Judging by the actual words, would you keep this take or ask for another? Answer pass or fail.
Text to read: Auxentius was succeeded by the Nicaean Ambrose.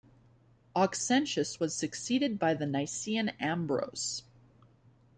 pass